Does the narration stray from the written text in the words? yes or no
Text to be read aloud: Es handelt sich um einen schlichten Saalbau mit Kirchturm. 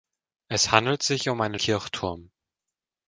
yes